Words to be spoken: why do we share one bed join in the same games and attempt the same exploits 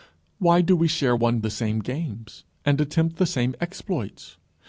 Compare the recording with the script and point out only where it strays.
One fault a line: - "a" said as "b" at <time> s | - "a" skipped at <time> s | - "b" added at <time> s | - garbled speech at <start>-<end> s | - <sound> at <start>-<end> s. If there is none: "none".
- "bed join in" skipped at 1.4 s